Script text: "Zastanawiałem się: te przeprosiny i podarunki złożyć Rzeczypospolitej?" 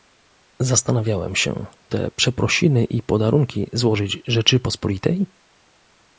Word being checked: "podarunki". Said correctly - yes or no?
yes